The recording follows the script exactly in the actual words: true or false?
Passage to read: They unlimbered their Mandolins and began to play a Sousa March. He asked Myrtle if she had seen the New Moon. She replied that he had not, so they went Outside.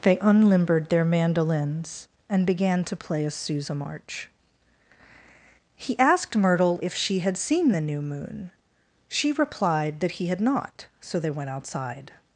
true